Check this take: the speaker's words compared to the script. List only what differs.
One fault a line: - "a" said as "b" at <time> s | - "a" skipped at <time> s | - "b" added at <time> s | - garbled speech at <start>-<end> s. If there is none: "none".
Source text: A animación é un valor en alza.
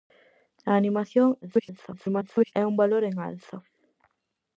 - garbled speech at 1.4-2.5 s